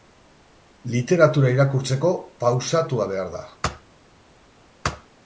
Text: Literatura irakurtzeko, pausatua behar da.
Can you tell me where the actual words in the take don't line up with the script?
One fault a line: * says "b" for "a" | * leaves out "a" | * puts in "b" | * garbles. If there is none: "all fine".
all fine